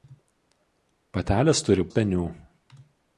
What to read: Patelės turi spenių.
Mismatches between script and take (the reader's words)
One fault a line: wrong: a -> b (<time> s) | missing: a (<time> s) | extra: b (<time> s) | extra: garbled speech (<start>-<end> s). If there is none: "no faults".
no faults